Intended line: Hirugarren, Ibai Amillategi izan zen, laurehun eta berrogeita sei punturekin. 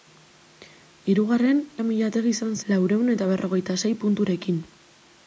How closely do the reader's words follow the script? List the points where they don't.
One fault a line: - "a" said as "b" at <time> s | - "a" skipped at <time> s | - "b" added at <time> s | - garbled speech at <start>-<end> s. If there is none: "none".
- "Ibai" skipped at 1.6 s
- "zen" skipped at 2.5 s